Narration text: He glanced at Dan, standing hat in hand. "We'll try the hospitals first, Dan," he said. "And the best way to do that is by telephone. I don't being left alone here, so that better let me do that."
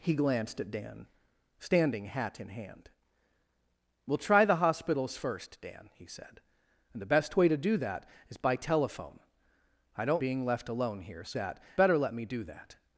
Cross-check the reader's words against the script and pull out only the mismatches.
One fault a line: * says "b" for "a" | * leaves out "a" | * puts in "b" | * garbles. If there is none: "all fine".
all fine